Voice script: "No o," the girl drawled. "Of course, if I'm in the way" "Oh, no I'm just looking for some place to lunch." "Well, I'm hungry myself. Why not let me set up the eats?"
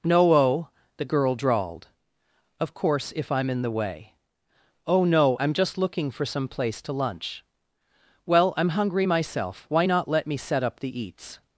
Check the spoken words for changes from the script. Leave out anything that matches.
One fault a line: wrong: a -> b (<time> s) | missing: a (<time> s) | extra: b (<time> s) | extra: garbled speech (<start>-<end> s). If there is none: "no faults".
no faults